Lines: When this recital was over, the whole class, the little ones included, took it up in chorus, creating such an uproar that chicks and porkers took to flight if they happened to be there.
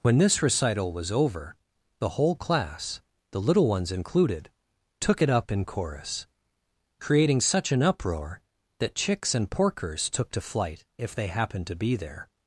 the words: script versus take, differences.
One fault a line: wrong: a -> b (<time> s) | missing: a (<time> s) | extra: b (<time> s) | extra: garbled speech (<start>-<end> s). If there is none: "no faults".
no faults